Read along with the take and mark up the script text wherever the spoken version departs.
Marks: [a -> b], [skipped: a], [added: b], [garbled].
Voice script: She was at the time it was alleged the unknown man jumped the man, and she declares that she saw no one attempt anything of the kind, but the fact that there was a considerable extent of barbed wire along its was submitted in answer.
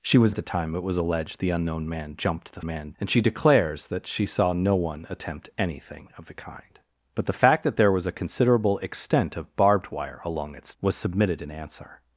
She was at the time it was alleged the unknown man jumped the man, and she declares that she saw no one attempt anything of the kind, but the fact that there was a considerable extent of barbed wire along its was submitted in answer.